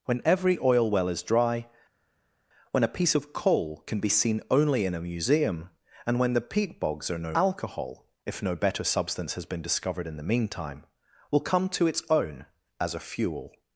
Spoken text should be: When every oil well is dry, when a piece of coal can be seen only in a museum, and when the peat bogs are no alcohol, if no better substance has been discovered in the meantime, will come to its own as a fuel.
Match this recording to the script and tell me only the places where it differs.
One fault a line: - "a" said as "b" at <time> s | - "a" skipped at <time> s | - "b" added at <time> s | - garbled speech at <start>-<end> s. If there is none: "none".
none